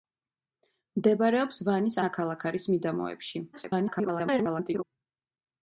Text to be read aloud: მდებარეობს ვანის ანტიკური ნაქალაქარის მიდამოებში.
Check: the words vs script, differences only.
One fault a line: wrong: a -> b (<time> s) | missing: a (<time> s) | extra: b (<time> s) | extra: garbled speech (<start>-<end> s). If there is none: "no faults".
missing: ანტიკური (2.0 s)
extra: garbled speech (3.5-4.8 s)